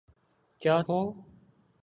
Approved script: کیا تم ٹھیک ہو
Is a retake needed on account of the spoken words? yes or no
yes